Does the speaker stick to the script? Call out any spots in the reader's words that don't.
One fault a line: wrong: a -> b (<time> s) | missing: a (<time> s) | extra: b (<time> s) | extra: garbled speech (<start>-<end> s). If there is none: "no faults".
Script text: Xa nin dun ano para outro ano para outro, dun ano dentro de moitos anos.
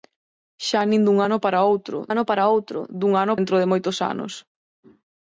no faults